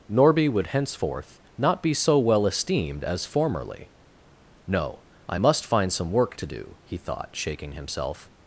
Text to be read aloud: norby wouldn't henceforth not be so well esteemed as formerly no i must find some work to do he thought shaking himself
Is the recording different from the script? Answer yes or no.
yes